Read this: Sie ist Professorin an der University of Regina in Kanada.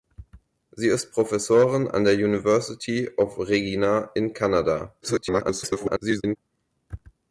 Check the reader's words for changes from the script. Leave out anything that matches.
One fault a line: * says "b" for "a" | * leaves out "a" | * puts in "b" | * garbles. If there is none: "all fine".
* garbles